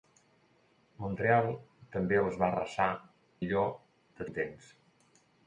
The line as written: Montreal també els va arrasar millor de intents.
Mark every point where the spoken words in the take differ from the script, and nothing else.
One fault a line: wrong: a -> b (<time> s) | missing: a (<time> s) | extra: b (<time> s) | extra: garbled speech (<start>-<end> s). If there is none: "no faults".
no faults